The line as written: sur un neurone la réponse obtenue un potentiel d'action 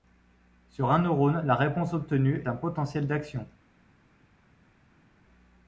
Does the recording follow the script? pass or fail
pass